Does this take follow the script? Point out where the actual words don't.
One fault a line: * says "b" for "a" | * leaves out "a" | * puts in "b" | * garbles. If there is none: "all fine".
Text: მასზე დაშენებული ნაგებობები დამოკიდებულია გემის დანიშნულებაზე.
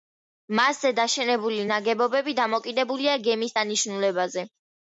all fine